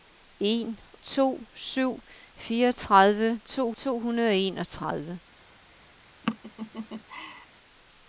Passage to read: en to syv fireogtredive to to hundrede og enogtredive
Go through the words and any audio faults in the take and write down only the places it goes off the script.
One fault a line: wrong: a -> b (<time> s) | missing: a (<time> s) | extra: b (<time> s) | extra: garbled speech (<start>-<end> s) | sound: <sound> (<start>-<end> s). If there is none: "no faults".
sound: laugh (6.2-7.5 s)